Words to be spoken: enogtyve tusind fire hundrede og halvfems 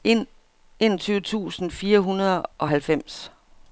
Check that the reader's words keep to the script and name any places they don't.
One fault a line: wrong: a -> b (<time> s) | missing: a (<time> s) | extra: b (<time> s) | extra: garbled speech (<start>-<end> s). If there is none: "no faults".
no faults